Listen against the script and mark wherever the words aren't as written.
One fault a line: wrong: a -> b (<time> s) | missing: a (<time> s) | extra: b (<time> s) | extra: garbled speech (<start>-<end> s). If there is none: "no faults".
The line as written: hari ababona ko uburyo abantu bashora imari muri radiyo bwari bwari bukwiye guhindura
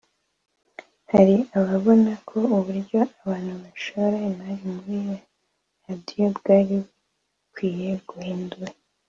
missing: bwari (6.8 s)